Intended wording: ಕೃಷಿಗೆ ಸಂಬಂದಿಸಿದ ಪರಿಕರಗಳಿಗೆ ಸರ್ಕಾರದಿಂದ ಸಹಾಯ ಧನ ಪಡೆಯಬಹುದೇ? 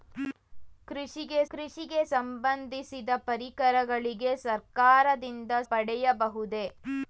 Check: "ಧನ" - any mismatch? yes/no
yes